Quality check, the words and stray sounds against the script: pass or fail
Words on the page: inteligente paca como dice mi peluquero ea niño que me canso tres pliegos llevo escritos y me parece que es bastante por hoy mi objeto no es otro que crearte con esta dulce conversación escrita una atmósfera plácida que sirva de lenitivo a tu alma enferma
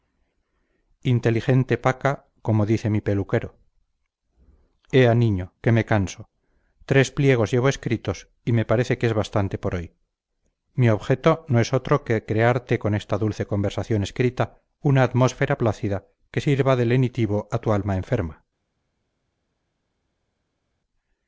pass